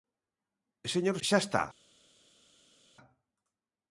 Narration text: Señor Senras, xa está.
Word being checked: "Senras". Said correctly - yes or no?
no